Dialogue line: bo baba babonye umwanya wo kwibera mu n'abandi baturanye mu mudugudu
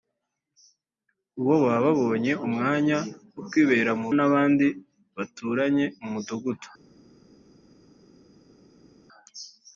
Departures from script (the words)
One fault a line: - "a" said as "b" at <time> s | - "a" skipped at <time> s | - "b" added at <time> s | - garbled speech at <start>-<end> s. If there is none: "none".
none